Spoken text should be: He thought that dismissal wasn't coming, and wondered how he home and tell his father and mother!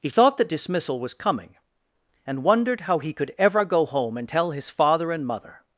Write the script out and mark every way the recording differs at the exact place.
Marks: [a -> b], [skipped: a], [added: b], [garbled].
He thought that dismissal [wasn't -> was] coming, and wondered how he [added: could ever go] home and tell his father and mother!